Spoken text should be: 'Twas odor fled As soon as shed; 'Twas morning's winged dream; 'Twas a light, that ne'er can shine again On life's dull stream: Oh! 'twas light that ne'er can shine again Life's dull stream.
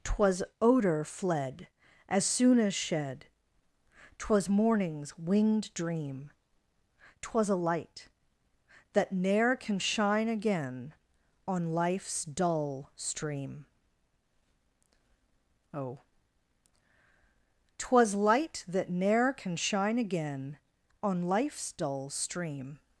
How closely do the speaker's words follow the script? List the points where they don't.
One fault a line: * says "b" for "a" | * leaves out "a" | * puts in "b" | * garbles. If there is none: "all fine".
* puts in "On"